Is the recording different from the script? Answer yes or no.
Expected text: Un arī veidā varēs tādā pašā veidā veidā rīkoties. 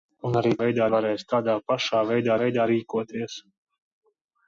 no